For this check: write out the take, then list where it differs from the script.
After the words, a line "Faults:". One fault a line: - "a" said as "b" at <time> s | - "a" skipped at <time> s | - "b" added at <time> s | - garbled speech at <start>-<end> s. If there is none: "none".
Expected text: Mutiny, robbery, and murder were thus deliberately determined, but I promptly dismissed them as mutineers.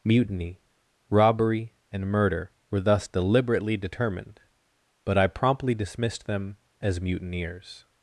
Mutiny, robbery, and murder were thus deliberately determined, but I promptly dismissed them as mutineers.
Faults:
none